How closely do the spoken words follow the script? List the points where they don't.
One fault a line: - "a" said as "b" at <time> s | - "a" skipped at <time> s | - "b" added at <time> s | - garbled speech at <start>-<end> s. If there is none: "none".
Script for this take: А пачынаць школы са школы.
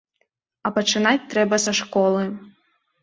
- "школы" said as "трэба" at 1.3 s